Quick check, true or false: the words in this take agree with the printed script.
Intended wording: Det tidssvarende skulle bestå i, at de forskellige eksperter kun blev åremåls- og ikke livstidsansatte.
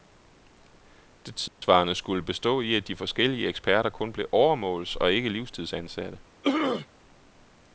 true